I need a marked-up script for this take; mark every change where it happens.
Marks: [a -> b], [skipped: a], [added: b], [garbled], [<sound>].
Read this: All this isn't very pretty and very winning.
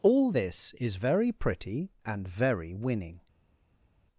All this [isn't -> is] very pretty and very winning.